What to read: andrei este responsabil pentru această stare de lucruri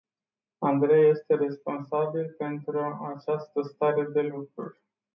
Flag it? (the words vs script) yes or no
no